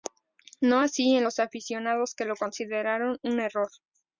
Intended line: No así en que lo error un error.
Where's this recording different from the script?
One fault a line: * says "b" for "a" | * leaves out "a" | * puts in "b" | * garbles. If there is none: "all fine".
* puts in "los aficionados"
* says "consideraron" for "error"